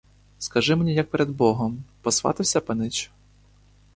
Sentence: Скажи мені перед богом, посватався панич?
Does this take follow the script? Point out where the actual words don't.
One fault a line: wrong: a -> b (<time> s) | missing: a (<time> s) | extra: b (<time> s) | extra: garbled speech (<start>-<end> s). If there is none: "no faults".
extra: як (0.9 s)